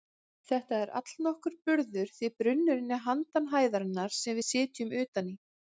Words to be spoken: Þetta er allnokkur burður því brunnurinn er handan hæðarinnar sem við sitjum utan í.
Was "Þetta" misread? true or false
false